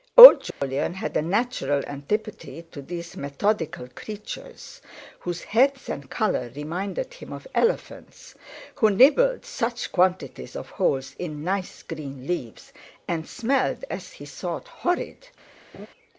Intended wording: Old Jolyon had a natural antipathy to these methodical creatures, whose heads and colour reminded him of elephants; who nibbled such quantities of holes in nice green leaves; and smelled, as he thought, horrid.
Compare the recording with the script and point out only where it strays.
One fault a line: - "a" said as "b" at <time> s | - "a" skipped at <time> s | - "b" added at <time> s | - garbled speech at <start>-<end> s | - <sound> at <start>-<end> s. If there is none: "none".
- dropout at 0.5-0.6 s
- laugh at 15.7-15.9 s